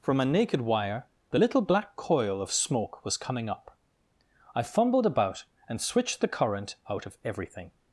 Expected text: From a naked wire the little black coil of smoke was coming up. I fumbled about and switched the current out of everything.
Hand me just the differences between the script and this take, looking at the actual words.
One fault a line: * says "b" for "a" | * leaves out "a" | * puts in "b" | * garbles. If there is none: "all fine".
all fine